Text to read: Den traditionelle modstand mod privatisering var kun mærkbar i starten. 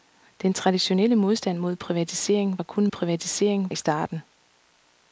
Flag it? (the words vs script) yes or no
yes